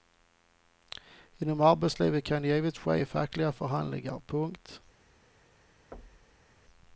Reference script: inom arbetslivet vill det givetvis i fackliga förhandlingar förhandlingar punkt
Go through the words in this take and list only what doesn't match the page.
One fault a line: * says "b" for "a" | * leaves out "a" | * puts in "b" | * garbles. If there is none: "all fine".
* says "kan" for "vill"
* puts in "ske"
* leaves out "förhandlingar"